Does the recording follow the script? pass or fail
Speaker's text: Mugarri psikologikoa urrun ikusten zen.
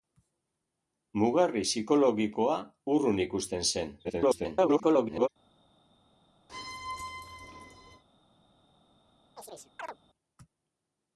fail